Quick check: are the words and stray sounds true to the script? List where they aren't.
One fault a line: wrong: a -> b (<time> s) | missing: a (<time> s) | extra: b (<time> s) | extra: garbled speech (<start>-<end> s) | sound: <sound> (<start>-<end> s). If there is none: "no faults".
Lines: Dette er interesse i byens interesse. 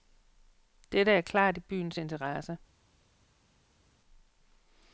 wrong: interesse -> klart (1.2 s)